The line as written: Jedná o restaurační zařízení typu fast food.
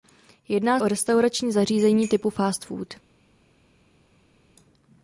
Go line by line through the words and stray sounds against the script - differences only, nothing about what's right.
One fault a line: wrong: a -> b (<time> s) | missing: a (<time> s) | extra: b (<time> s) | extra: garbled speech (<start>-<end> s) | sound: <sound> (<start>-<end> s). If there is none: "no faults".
no faults